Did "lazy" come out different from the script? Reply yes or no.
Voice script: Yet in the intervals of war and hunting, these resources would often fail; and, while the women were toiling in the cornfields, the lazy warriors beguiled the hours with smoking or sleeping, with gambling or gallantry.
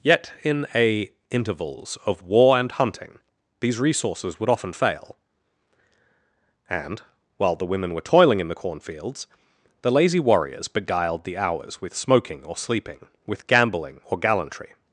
no